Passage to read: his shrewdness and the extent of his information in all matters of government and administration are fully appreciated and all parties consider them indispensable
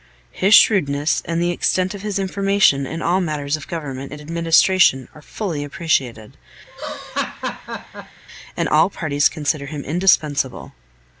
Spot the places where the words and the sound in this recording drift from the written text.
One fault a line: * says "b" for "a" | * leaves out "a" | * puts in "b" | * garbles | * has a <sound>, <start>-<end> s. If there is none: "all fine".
* has a laugh, 6.7-8.2 s
* says "him" for "them"